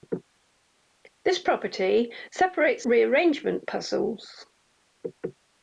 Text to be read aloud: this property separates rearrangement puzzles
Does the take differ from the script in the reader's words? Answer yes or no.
no